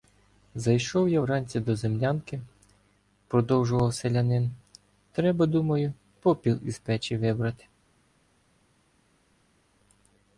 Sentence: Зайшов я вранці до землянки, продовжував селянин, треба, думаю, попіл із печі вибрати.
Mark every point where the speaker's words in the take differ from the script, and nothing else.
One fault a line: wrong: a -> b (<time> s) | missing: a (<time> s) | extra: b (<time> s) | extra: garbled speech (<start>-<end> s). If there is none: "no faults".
no faults